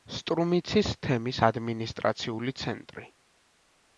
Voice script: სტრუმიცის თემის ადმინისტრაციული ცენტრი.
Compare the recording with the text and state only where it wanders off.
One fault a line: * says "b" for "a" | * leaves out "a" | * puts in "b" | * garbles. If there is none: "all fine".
all fine